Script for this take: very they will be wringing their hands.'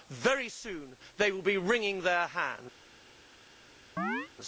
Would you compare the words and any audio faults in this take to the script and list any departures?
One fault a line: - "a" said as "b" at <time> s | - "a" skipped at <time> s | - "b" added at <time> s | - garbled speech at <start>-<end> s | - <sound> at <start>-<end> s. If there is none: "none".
- "soon" added at 0.5 s
- chirp at 4.0-4.3 s